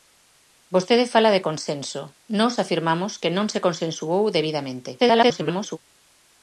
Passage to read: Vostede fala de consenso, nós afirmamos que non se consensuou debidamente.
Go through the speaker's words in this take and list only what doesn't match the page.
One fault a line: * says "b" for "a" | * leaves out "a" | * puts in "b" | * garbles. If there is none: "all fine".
* garbles